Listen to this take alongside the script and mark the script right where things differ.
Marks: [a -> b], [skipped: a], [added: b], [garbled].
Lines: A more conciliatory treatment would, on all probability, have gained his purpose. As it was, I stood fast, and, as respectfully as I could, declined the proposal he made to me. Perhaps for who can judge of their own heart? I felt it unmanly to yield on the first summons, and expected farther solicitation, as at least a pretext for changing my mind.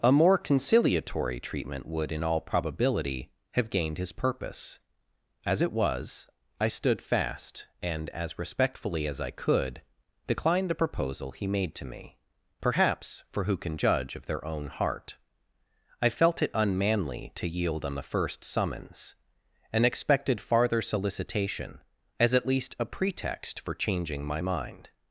A more conciliatory treatment would, [on -> in] all probability, have gained his purpose. As it was, I stood fast, and, as respectfully as I could, declined the proposal he made to me. Perhaps for who can judge of their own heart? I felt it unmanly to yield on the first summons, and expected farther solicitation, as at least a pretext for changing my mind.